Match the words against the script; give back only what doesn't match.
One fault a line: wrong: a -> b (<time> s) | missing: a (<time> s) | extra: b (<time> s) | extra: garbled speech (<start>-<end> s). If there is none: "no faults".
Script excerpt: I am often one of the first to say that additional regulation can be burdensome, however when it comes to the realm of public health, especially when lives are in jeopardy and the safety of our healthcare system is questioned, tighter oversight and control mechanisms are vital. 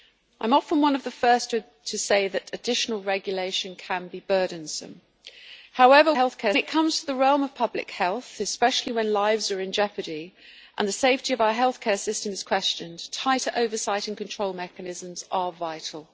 wrong: when -> healthcare (6.1 s)